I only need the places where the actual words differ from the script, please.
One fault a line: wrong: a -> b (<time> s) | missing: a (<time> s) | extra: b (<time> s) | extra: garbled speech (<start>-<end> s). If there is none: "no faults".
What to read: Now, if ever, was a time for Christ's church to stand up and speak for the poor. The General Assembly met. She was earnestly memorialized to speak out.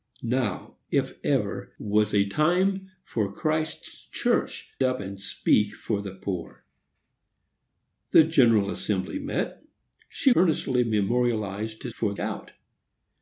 missing: to stand (4.7 s)
missing: was (10.3 s)
wrong: speak -> for (11.9 s)